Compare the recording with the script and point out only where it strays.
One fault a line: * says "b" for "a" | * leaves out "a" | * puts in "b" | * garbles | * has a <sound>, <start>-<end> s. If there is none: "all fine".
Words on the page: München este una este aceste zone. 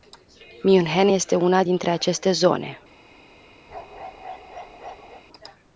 * says "dintre" for "este"
* has a bark, 3.7-5.2 s